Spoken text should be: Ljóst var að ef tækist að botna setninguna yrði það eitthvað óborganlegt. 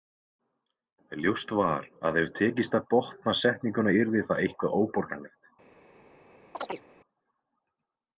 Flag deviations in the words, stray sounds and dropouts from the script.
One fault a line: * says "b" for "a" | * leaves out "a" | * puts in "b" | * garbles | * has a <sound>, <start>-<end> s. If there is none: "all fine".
* has a chirp, 6.5-6.8 s